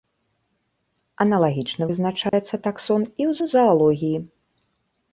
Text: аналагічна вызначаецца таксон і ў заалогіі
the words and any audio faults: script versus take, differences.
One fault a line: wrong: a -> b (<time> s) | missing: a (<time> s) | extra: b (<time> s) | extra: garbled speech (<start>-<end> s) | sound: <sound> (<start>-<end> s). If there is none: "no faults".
sound: dropout (2.3-2.3 s)
extra: ў (3.4 s)